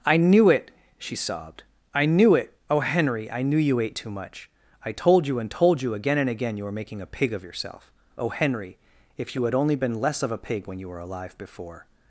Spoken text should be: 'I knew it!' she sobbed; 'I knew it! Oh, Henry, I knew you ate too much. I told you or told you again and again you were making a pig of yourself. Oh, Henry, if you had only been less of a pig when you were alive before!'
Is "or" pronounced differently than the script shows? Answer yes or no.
yes